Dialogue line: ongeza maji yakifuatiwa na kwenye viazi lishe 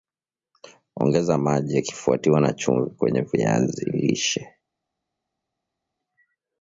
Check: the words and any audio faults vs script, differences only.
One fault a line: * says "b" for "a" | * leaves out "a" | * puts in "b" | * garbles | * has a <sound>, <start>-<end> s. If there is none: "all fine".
* puts in "chumvi"